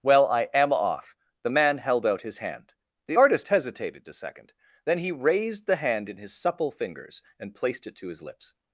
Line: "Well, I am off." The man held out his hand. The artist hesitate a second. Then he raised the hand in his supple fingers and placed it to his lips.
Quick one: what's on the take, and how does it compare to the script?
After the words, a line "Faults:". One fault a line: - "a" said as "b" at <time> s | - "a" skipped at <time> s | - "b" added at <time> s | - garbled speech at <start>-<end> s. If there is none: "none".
"Well, I am off." The man held out his hand. The artist hesitated a second. Then he raised the hand in his supple fingers and placed it to his lips.
Faults:
- "hesitate" said as "hesitated" at 3.5 s